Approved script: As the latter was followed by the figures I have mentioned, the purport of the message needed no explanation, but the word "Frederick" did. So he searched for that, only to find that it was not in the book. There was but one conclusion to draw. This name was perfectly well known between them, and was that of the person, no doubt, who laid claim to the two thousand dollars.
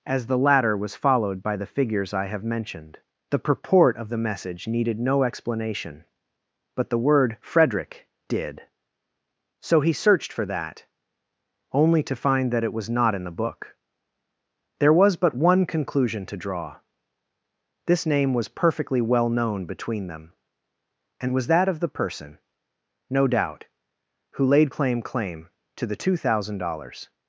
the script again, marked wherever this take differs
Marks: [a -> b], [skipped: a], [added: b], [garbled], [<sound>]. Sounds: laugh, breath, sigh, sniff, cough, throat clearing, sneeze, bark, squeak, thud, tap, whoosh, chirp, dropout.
As the latter was followed by the figures I have mentioned, the purport of the message needed no explanation, but the word "Frederick" did. So he searched for that, only to find that it was not in the book. There was but one conclusion to draw. This name was perfectly well known between them, and was that of the person, no doubt, who laid claim [added: claim] to the two thousand dollars.